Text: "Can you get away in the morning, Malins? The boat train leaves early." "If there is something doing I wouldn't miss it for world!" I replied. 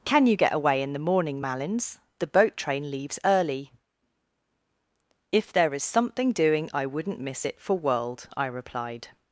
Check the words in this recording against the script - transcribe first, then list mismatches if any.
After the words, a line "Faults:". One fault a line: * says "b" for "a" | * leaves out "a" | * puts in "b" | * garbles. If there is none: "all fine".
"Can you get away in the morning, Malins? The boat train leaves early." "If there is something doing I wouldn't miss it for world!" I replied.
Faults:
all fine